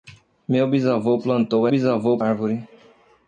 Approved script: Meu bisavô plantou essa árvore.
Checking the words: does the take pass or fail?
fail